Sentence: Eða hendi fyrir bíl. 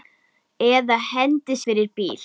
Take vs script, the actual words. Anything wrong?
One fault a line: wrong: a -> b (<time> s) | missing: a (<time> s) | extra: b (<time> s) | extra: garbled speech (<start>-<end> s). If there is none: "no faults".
no faults